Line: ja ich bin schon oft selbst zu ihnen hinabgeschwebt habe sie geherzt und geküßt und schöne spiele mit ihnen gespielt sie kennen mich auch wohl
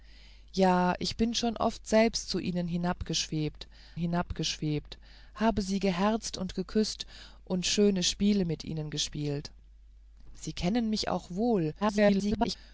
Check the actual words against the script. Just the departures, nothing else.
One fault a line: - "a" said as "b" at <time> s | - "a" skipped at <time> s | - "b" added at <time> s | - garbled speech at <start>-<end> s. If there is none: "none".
- "hinabgeschwebt" added at 4.0 s
- garbled speech at 11.8-12.6 s